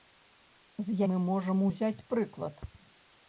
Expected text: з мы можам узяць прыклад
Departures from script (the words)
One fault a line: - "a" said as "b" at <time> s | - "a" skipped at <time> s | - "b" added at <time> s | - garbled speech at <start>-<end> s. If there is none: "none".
none